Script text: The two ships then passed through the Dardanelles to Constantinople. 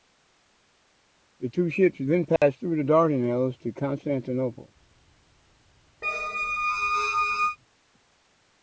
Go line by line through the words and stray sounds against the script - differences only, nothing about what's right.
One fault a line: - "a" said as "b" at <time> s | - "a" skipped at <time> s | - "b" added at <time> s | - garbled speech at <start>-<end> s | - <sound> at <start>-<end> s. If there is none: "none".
- dropout at 2.4-2.4 s
- squeak at 6.0-7.6 s